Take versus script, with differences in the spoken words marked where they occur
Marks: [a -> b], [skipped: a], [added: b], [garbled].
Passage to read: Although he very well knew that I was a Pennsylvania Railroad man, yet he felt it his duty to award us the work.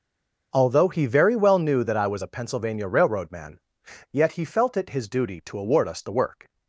Although he very well knew that I was a Pennsylvania Railroad man, yet he felt it his duty to award us the work.